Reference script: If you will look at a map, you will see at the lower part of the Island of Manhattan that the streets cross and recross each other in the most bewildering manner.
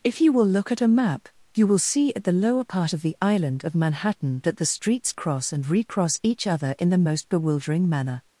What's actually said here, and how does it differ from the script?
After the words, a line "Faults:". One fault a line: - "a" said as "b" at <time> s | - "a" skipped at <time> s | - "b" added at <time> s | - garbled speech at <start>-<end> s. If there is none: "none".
If you will look at a map, you will see at the lower part of the Island of Manhattan that the streets cross and recross each other in the most bewildering manner.
Faults:
none